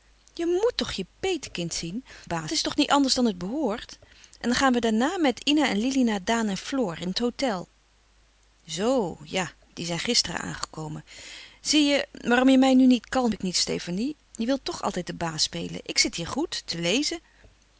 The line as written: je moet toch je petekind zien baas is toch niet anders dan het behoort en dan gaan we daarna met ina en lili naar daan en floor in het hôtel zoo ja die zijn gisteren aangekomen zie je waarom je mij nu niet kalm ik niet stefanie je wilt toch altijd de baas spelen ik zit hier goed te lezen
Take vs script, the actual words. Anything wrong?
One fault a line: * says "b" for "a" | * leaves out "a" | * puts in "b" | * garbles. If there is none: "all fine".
all fine